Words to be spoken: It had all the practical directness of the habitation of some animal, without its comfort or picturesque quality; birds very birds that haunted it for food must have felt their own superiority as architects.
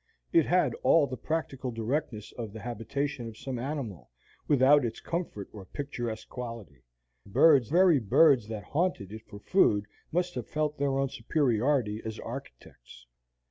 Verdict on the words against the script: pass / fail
pass